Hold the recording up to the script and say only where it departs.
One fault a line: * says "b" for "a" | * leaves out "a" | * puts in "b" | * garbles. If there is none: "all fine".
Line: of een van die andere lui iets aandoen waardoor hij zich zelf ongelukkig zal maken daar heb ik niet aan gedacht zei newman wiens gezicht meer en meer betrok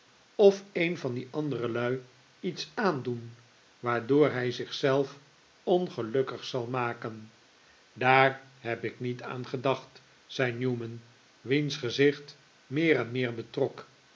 all fine